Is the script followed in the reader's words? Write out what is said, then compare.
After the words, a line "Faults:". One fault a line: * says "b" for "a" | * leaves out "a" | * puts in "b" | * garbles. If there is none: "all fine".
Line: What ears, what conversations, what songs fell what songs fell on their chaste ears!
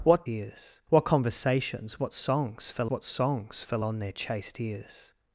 What ears, what conversations, what songs fell what songs fell on their chaste ears!
Faults:
all fine